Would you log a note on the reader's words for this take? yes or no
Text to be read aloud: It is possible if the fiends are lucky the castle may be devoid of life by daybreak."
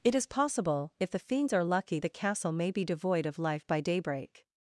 no